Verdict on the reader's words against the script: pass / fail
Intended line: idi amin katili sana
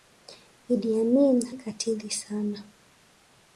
pass